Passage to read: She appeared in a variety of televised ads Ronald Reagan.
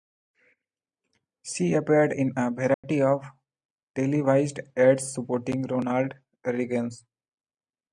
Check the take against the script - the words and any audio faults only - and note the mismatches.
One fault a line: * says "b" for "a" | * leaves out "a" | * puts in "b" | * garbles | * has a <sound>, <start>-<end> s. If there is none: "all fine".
* has a dropout, 2.7-2.8 s
* puts in "supporting"